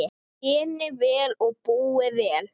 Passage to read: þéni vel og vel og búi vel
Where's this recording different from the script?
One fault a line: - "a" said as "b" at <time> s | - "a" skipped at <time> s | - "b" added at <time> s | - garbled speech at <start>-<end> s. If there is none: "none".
- "vel og" skipped at 1.6 s